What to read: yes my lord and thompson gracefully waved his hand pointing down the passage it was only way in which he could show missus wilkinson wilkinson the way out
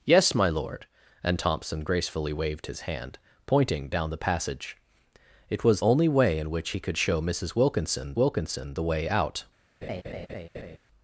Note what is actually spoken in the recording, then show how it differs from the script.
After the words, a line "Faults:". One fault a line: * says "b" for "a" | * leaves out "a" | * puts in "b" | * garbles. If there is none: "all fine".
yes my lord and thompson gracefully waved his hand pointing down the passage it was only way in which he could show missus wilkinson wilkinson the way out
Faults:
all fine